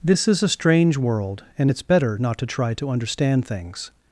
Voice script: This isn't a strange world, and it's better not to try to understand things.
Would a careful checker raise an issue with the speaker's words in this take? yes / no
yes